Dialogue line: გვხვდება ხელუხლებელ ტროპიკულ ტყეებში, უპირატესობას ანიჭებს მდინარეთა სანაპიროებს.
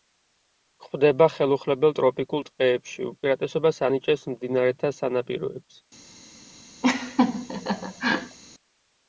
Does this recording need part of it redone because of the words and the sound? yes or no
yes